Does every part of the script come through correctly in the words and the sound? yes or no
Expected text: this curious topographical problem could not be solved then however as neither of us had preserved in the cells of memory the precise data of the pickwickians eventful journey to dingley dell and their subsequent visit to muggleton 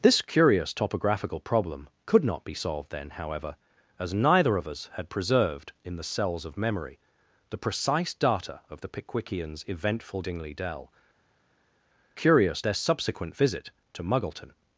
no